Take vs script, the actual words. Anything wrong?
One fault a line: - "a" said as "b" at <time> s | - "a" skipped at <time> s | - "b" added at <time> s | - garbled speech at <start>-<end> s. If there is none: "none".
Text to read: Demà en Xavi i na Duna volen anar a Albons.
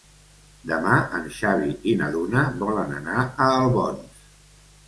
none